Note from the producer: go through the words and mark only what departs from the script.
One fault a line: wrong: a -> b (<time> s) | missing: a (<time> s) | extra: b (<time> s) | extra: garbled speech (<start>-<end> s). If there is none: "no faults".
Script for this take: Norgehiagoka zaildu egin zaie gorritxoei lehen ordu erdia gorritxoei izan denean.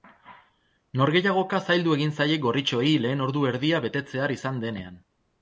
wrong: gorritxoei -> betetzear (3.8 s)